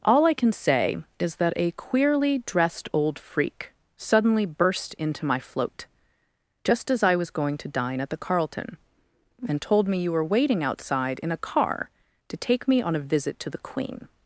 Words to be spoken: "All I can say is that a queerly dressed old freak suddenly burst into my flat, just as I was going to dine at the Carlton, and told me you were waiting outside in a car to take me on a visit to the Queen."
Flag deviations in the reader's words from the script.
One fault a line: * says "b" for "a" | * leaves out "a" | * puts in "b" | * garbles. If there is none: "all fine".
* says "float" for "flat"